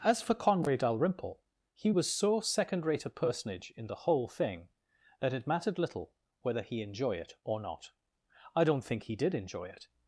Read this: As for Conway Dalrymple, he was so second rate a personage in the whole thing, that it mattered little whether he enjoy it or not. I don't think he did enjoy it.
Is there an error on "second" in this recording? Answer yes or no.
no